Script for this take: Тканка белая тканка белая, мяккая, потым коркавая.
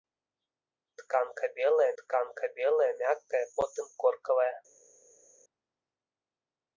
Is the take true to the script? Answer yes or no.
yes